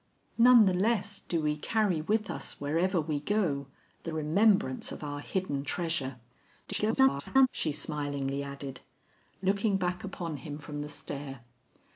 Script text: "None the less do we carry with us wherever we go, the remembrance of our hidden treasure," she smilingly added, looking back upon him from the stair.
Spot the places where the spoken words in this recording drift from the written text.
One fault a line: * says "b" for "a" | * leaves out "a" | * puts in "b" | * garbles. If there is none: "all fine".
* garbles